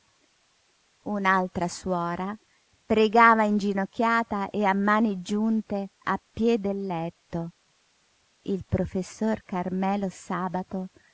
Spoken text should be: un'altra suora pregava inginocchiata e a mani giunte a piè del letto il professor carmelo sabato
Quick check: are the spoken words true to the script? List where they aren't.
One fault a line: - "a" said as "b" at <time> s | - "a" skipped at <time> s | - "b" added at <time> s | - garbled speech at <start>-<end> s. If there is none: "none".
none